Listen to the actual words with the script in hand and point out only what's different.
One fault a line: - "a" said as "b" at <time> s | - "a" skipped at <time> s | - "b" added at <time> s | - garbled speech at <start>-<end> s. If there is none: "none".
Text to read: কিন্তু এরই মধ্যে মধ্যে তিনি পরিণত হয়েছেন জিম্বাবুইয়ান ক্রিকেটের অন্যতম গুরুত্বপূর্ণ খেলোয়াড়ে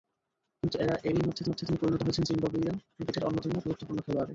none